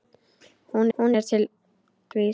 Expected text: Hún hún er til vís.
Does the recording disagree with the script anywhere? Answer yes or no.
no